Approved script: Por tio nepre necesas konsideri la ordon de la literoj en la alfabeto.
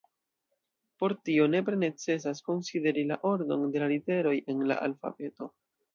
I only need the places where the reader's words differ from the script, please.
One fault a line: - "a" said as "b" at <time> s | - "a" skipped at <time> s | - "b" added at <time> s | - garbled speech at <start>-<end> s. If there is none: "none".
none